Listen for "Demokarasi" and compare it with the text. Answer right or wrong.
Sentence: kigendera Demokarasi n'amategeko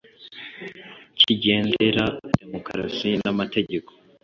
right